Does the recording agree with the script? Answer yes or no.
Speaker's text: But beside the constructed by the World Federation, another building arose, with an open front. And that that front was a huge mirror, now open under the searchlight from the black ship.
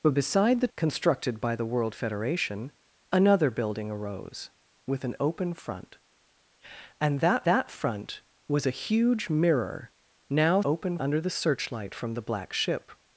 yes